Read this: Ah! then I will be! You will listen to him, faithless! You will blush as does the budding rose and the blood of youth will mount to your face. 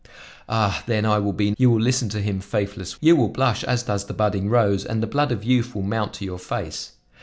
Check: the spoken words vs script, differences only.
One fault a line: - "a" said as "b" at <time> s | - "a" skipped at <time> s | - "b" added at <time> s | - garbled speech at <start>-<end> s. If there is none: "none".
none